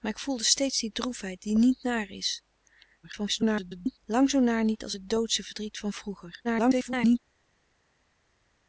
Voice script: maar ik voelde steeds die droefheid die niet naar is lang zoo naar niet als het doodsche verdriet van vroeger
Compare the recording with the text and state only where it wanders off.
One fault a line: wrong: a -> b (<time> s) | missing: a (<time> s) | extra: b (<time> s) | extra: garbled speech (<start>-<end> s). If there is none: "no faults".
extra: garbled speech (3.0-4.0 s)
extra: garbled speech (6.4-7.2 s)